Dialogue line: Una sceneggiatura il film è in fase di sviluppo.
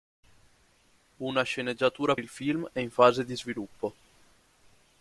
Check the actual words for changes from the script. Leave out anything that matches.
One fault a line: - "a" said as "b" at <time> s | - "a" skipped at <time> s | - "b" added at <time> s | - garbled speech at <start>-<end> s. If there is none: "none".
none